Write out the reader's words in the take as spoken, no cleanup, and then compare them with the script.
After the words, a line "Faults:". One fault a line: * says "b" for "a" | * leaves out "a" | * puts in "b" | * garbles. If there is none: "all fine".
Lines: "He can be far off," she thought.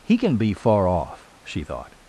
"He can be far off," she thought.
Faults:
all fine